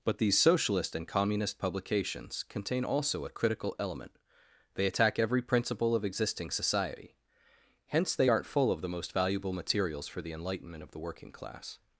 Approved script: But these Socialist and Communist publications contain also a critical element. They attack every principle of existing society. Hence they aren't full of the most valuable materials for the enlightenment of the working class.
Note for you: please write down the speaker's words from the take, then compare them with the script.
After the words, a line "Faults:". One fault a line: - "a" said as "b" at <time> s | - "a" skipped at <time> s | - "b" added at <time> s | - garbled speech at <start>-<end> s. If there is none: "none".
But these Socialist and Communist publications contain also a critical element. They attack every principle of existing society. Hence they aren't full of the most valuable materials for the enlightenment of the working class.
Faults:
none